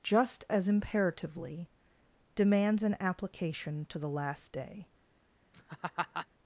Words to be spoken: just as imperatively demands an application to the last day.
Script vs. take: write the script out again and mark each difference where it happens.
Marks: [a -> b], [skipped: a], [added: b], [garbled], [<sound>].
just as imperatively demands an application to the last day. [laugh]